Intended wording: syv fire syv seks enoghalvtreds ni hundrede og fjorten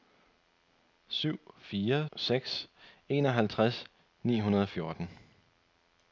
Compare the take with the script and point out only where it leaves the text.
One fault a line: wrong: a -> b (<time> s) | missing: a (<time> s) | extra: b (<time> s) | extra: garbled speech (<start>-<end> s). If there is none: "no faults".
missing: syv (2.1 s)